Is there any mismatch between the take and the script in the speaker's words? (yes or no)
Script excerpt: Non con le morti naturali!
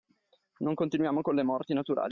yes